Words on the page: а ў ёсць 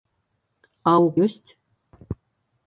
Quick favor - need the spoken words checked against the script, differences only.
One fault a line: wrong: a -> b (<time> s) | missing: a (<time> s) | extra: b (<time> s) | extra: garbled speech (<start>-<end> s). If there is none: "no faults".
no faults